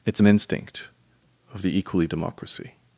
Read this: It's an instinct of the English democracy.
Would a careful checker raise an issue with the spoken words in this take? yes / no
yes